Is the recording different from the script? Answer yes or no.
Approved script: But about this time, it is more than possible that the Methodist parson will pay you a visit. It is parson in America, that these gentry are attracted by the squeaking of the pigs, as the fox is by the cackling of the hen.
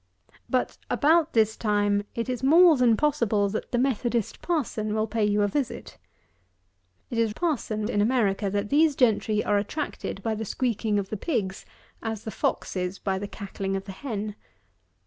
no